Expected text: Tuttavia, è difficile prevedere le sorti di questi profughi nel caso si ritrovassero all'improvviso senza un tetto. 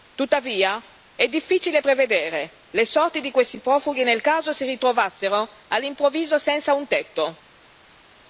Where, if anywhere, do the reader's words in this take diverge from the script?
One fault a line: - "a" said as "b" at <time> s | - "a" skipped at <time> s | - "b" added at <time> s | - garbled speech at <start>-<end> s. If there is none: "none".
none